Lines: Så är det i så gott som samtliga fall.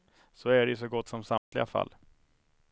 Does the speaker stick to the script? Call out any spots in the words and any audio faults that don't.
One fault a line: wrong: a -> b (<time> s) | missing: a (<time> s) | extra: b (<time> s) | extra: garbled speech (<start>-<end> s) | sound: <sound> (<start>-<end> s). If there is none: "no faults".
sound: dropout (1.4-1.5 s)